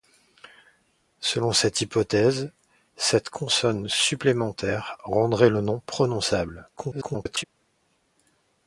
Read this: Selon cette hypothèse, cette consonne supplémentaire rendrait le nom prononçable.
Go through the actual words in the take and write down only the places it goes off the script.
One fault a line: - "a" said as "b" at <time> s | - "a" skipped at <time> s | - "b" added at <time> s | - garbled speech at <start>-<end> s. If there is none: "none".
- garbled speech at 6.8-7.4 s